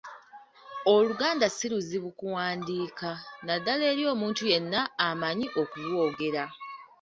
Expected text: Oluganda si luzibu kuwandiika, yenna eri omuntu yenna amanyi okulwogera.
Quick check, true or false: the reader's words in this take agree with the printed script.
false